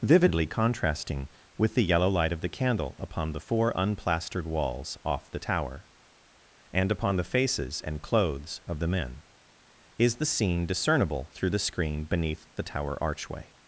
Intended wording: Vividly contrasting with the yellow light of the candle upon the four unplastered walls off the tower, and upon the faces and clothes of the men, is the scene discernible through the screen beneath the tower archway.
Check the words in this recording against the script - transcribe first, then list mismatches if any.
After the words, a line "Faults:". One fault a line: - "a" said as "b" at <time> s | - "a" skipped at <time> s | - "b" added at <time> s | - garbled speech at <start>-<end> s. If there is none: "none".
Vividly contrasting with the yellow light of the candle upon the four unplastered walls off the tower, and upon the faces and clothes of the men, is the scene discernible through the screen beneath the tower archway.
Faults:
none